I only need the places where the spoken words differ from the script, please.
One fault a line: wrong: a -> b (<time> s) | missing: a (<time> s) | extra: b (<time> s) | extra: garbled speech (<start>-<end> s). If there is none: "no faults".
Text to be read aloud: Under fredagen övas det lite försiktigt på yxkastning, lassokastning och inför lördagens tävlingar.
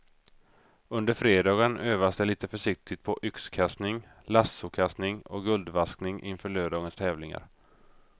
extra: guldvaskning (5.4 s)